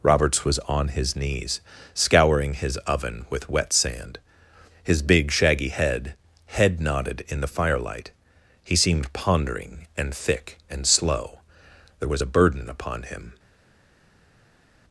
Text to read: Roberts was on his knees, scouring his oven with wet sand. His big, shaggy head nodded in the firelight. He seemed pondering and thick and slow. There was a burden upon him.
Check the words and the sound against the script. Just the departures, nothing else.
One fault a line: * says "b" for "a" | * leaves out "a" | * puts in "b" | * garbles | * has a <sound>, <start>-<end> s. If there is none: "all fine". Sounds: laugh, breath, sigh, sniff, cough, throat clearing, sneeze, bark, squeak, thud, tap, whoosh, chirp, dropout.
* puts in "head"